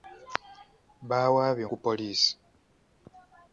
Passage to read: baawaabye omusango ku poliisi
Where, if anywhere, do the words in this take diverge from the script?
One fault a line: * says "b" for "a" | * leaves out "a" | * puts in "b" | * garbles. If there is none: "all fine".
* leaves out "omusango"